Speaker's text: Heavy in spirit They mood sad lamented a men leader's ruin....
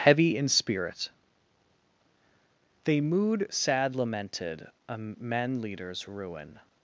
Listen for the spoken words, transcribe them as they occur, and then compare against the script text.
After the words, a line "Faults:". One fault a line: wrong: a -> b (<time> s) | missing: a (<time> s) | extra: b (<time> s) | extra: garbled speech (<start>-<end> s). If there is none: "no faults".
Heavy in spirit They mood sad lamented a men leader's ruin....
Faults:
no faults